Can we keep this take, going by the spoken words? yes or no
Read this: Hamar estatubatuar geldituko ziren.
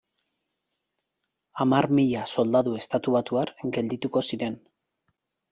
no